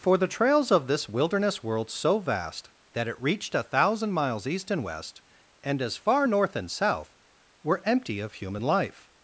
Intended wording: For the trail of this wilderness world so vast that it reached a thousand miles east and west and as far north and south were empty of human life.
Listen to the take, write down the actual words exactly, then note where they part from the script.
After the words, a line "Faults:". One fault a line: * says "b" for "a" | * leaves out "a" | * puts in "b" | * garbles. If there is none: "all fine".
For the trails of this wilderness world so vast that it reached a thousand miles east and west and as far north and south were empty of human life.
Faults:
* says "trails" for "trail"